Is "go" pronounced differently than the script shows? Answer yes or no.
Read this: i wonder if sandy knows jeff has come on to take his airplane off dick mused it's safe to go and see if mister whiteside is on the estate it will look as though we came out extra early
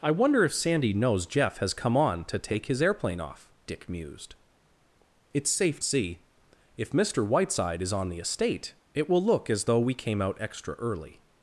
yes